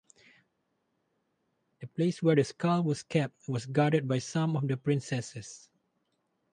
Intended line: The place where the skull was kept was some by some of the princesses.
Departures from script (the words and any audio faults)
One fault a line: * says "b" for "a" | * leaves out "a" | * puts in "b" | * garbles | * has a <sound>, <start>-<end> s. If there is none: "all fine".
* says "guarded" for "some"